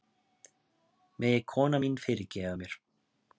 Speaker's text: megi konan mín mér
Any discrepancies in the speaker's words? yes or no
yes